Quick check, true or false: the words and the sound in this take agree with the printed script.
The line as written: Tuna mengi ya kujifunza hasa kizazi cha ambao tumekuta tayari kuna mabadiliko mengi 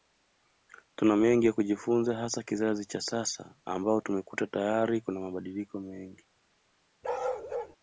false